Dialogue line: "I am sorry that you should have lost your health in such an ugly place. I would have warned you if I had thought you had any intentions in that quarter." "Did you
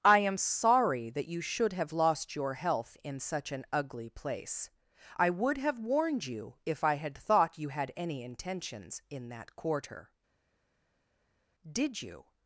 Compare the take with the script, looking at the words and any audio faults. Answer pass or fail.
pass